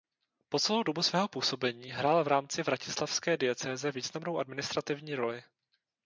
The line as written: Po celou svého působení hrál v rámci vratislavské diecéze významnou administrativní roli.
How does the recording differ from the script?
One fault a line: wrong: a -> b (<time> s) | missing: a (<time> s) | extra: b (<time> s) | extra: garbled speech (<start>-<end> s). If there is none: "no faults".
extra: dobu (0.8 s)